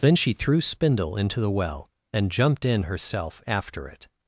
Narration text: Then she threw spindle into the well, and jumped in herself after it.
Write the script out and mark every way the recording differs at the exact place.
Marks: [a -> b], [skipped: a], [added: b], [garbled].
Then she threw spindle into the well, and jumped in herself after it.